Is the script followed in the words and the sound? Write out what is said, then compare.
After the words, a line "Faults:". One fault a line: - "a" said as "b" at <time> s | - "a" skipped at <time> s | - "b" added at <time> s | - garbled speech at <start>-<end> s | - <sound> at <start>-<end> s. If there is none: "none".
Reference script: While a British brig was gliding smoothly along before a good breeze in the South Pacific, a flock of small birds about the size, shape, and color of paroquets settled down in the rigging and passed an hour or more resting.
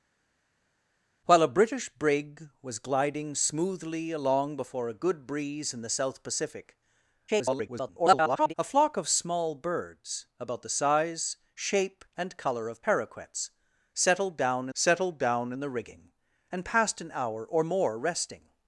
While a British brig was gliding smoothly along before a good breeze in the South Pacific, [garbled] a flock of small birds about the size, shape, and color of paroquets settled down settled down in the rigging and passed an hour or more resting.
Faults:
- garbled speech at 7.3-8.5 s
- "settled down" added at 14.7 s